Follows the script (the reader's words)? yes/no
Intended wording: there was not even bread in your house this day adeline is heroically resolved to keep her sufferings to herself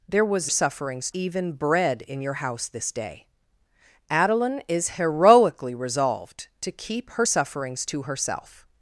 no